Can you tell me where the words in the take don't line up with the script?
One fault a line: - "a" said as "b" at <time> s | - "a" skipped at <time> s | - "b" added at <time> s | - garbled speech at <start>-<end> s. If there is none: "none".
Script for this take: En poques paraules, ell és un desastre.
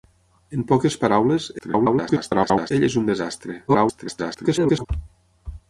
- garbled speech at 1.6-2.7 s
- garbled speech at 3.7-4.9 s